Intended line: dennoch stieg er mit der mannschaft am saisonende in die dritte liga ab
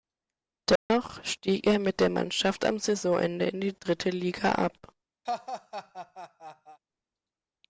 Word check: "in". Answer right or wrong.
right